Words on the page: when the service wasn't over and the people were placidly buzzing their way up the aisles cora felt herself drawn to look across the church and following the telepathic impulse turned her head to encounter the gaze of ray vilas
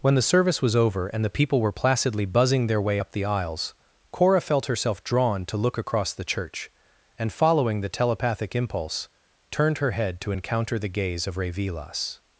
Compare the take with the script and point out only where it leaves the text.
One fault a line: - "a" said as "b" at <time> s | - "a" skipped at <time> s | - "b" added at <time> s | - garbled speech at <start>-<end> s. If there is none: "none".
- "wasn't" said as "was" at 0.6 s